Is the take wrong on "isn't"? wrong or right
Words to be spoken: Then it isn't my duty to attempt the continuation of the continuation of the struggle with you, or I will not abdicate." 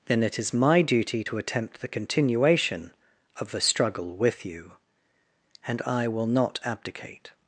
wrong